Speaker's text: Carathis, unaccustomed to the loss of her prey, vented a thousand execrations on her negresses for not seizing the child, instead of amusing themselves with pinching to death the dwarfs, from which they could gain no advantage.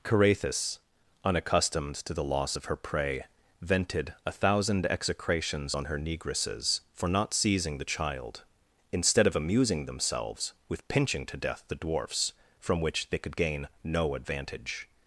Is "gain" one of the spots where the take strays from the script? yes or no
no